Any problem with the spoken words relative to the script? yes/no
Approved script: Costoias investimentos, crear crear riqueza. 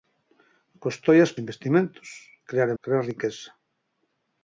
no